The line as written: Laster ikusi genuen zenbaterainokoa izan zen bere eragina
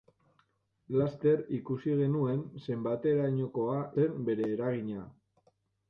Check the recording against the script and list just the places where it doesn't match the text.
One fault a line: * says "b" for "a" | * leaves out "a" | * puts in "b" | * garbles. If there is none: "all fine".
* leaves out "izan"